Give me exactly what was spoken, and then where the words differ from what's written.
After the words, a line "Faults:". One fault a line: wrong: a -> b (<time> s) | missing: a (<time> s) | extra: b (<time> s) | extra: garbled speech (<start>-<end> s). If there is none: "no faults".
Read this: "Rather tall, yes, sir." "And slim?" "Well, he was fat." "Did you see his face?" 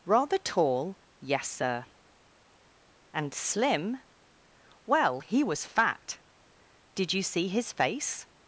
"Rather tall, yes, sir." "And slim?" "Well, he was fat." "Did you see his face?"
Faults:
no faults